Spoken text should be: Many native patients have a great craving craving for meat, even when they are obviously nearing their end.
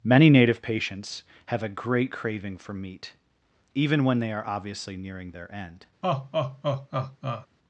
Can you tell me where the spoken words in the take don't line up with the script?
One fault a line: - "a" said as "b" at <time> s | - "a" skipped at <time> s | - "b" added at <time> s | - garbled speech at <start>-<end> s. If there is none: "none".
- "craving" skipped at 2.6 s